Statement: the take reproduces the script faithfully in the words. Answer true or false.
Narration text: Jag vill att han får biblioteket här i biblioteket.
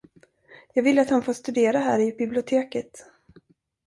false